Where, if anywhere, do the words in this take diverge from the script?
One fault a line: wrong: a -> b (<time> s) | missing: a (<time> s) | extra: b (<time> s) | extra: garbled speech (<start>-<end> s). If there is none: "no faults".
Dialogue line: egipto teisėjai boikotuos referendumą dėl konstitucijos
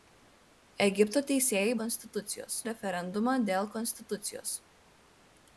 wrong: boikotuos -> konstitucijos (1.8 s)